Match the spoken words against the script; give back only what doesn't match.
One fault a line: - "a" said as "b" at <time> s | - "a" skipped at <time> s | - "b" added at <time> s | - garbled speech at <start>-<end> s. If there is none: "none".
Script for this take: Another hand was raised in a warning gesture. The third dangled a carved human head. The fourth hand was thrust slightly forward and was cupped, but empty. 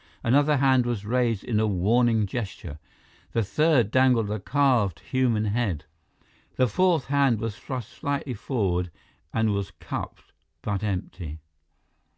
none